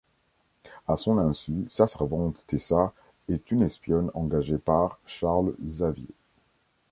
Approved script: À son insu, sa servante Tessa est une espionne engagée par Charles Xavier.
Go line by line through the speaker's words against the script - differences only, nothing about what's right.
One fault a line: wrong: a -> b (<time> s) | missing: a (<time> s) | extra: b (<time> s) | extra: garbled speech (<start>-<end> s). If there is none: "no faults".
no faults